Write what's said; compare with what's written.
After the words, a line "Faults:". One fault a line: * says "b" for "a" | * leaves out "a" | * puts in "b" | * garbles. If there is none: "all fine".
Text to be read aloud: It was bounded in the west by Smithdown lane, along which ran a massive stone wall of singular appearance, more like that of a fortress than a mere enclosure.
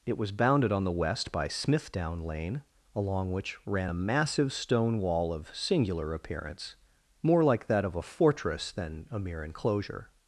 It was bounded on the west by Smithdown lane, along which ran a massive stone wall of singular appearance, more like that of a fortress than a mere enclosure.
Faults:
* says "on" for "in"